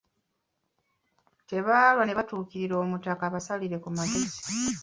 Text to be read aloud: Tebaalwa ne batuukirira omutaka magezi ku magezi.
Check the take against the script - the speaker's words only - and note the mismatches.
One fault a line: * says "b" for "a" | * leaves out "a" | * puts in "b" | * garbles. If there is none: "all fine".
* says "abasalire" for "magezi"